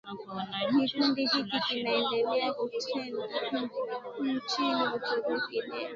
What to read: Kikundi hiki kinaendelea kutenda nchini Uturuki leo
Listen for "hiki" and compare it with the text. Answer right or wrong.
right